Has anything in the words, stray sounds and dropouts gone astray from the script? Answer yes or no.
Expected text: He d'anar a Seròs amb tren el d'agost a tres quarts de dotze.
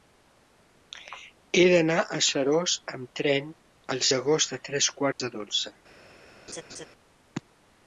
yes